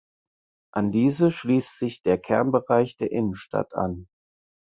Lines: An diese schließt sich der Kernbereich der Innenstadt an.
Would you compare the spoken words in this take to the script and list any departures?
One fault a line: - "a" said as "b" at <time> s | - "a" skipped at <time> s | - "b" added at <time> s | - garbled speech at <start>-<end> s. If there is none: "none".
none